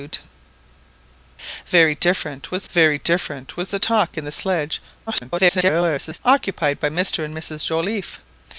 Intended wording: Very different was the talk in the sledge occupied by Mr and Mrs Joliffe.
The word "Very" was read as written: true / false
true